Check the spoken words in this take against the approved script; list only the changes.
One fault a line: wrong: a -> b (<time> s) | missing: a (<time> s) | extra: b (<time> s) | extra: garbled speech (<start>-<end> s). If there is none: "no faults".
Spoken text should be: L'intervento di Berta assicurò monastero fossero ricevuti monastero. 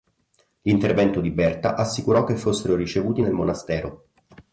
wrong: monastero -> che (2.2 s)
extra: nel (3.2 s)